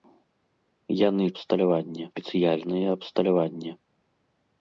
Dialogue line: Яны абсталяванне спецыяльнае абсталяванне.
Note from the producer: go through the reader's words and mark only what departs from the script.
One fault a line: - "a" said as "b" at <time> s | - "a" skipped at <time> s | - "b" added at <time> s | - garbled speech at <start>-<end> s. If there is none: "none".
none